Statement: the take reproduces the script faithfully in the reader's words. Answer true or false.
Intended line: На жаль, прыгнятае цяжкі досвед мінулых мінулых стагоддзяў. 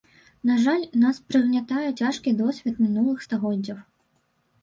false